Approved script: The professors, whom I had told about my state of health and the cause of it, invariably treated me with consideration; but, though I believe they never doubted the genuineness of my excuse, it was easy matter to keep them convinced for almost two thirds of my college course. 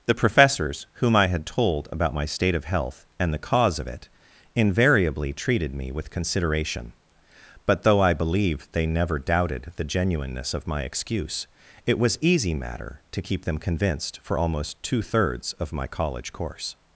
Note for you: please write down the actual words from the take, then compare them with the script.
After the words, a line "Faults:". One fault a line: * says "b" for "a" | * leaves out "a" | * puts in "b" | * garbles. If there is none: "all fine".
The professors, whom I had told about my state of health and the cause of it, invariably treated me with consideration; but, though I believe they never doubted the genuineness of my excuse, it was easy matter to keep them convinced for almost two thirds of my college course.
Faults:
all fine